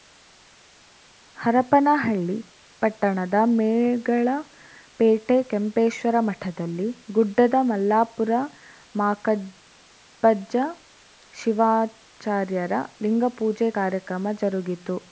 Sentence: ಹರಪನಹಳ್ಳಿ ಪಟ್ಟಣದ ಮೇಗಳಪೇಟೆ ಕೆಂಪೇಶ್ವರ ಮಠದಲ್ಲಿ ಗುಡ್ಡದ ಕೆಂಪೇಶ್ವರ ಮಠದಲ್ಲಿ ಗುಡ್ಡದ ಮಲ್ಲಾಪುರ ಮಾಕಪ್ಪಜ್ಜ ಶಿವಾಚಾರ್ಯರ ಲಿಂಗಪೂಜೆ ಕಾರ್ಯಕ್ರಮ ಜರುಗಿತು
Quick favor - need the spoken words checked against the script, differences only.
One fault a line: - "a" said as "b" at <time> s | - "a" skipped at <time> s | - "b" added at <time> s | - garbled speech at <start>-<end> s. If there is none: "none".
- "ಕೆಂಪೇಶ್ವರ ಮಠದಲ್ಲಿ ಗುಡ್ಡದ" skipped at 7.5 s